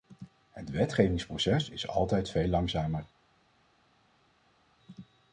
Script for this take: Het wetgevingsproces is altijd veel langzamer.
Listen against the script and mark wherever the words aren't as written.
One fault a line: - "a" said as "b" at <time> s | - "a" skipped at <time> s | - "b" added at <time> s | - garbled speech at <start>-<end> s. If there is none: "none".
none